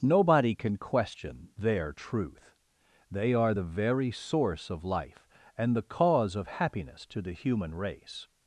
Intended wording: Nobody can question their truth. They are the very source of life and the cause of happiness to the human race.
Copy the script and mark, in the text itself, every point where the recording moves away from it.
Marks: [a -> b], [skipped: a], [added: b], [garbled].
Nobody can question their truth. They are the very source of life and the cause of happiness to the human race.